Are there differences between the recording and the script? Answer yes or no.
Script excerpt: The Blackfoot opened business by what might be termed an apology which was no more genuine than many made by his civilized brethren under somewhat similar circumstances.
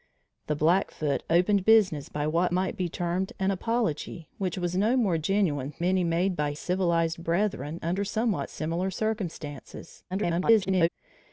yes